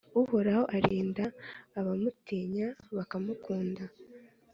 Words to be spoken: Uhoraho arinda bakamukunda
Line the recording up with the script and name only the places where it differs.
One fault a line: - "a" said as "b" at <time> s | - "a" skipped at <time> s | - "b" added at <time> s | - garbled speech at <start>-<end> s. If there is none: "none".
- "abamutinya" added at 1.8 s